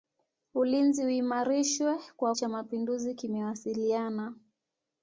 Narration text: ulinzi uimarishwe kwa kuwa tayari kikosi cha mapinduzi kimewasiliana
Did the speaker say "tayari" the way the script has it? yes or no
no